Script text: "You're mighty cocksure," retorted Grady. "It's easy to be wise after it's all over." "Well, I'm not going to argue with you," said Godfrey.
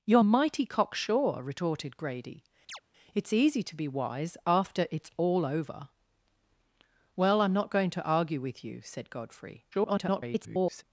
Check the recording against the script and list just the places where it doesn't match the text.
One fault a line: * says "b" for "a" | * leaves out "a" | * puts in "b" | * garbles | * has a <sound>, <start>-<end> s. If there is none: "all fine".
* has a chirp, 2.7-2.8 s
* garbles